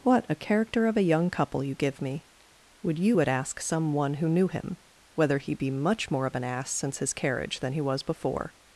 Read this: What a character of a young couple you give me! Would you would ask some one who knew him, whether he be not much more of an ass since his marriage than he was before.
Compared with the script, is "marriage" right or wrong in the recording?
wrong